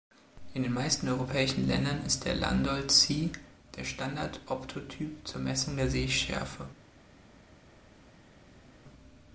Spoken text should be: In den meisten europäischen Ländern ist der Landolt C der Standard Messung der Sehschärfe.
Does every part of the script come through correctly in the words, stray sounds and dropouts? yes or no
no